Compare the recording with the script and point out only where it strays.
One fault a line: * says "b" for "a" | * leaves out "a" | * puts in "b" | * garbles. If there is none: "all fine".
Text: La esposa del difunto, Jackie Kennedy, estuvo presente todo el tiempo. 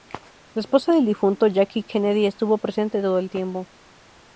all fine